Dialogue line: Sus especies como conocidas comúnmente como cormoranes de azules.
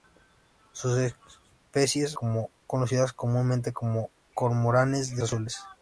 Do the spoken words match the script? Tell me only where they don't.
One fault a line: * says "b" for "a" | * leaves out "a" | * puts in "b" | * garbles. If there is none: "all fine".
all fine